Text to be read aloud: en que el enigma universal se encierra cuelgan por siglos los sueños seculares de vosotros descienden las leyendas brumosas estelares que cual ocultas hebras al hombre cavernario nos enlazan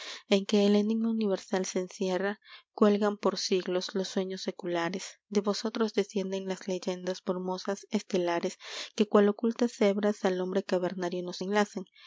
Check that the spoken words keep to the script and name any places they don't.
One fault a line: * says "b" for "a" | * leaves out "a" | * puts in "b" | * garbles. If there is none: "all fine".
all fine